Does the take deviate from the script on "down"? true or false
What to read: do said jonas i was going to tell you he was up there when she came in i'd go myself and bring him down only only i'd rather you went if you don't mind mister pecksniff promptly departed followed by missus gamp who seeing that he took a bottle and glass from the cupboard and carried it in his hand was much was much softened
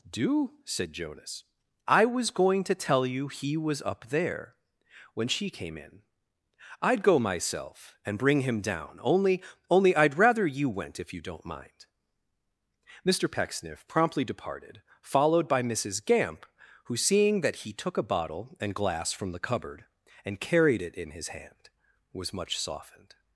false